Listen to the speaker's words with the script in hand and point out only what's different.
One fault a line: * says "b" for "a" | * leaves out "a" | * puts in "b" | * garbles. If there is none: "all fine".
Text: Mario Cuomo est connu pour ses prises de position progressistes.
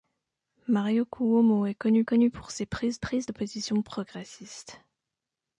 * puts in "connu"
* puts in "prises"